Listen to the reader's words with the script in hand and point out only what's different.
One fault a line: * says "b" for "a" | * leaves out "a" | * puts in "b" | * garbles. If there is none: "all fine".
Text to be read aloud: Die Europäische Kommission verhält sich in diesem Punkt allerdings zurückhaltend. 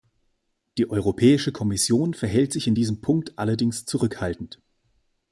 all fine